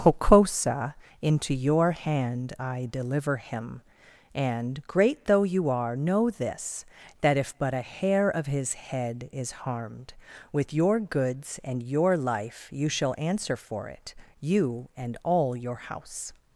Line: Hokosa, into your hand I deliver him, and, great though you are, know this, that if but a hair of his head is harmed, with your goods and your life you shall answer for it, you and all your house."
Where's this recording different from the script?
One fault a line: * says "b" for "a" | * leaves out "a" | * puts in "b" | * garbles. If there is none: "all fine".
all fine